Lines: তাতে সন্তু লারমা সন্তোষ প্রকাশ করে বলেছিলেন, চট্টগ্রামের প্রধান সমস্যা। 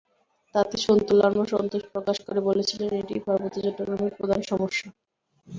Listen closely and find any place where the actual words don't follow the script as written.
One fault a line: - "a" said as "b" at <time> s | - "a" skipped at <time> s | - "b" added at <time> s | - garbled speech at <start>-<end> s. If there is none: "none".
- "এটিই পার্বত্য" added at 2.9 s